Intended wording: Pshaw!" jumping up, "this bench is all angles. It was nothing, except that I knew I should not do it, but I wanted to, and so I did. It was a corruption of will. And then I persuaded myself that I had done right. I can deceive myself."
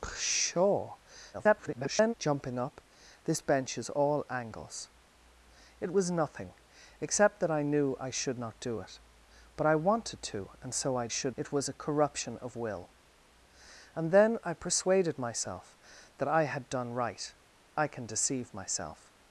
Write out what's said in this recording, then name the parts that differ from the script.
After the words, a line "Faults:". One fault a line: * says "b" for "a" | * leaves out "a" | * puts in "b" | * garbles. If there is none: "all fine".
Pshaw!" [garbled] jumping up, "this bench is all angles. It was nothing, except that I knew I should not do it, but I wanted to, and so I should. It was a corruption of will. And then I persuaded myself that I had done right. I can deceive myself."
Faults:
* garbles
* says "should" for "did"